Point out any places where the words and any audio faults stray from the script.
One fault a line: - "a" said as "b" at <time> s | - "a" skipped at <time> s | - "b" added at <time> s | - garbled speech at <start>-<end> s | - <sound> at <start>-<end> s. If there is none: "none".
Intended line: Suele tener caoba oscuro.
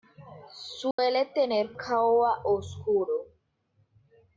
- dropout at 0.9-1.0 s